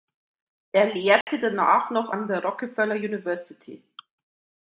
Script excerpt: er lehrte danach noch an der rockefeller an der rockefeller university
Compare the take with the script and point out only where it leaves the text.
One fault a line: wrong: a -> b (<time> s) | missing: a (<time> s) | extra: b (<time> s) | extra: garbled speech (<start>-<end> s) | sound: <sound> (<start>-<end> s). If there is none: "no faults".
sound: dropout (1.2-1.3 s)
missing: an der rockefeller (3.0 s)